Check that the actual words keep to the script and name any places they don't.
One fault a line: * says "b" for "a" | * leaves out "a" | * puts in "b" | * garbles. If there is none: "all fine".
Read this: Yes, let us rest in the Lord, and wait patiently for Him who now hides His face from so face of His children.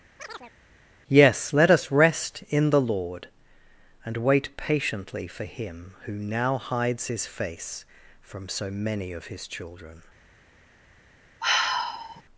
* says "many" for "face"